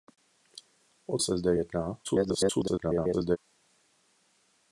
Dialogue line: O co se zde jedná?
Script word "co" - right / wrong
wrong